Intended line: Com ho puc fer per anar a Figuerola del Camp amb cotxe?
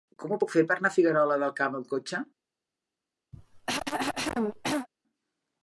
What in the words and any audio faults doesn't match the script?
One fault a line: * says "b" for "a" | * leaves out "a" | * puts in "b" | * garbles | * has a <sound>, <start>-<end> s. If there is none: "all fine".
* has a cough, 3.3-4.9 s